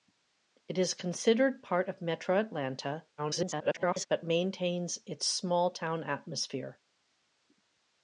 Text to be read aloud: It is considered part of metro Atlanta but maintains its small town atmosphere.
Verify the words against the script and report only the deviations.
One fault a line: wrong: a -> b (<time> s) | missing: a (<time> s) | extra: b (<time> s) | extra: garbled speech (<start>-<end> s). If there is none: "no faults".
extra: garbled speech (3.2-4.1 s)